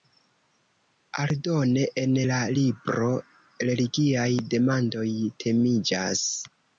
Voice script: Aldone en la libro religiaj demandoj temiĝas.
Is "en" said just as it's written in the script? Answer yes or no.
yes